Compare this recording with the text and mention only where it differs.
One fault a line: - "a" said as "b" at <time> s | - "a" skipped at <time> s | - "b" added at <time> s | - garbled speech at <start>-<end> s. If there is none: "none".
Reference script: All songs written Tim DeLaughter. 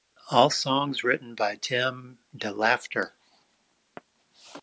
- "by" added at 1.4 s